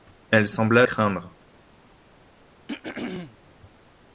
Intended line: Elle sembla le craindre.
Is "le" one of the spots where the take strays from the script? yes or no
yes